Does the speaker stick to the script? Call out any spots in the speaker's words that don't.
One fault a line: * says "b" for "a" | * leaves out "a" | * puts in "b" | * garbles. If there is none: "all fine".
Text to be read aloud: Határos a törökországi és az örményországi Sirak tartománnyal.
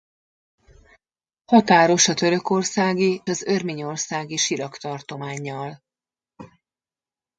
* leaves out "és"